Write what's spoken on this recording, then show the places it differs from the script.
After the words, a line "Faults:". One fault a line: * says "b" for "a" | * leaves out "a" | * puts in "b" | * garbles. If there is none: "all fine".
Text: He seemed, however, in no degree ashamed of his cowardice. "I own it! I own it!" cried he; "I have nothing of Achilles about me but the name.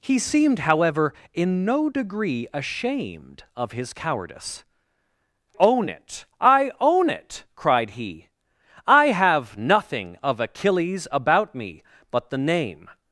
He seemed, however, in no degree ashamed of his cowardice. "own it! I own it!" cried he; "I have nothing of Achilles about me but the name.
Faults:
* leaves out "I"